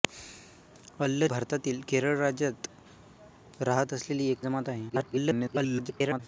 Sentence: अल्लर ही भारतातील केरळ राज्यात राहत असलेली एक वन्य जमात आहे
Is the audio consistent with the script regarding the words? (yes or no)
no